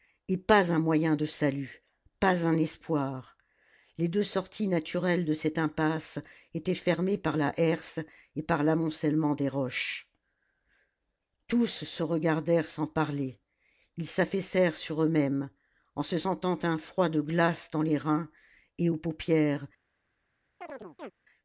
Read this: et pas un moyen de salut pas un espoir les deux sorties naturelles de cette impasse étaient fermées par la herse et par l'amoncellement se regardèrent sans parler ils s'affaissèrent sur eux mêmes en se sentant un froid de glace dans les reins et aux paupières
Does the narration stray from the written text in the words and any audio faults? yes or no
yes